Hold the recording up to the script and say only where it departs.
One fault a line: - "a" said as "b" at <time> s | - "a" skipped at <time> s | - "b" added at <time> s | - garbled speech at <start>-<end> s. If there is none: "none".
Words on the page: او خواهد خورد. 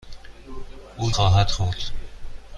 none